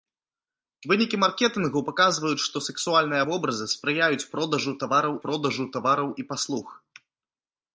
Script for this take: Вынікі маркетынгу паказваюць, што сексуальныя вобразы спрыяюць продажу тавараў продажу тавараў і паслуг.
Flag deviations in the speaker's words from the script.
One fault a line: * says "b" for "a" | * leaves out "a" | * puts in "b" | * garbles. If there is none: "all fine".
all fine